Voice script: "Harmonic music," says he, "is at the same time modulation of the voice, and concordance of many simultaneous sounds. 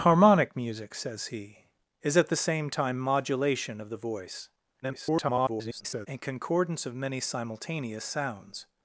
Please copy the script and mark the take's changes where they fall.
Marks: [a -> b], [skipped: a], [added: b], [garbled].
"Harmonic music," says he, "is at the same time modulation of the voice, [garbled] and concordance of many simultaneous sounds.